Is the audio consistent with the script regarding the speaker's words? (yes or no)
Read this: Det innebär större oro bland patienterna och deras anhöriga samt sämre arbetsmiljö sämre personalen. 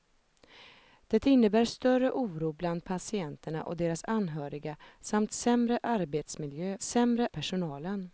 yes